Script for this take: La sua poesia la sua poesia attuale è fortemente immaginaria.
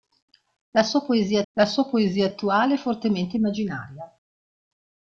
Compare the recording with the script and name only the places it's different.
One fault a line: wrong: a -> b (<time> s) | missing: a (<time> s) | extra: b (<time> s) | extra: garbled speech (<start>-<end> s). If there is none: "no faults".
no faults